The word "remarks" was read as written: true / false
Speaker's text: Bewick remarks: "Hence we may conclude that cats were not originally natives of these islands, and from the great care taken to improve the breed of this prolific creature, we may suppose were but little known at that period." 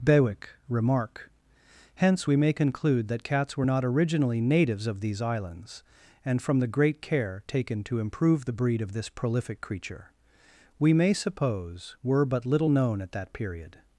false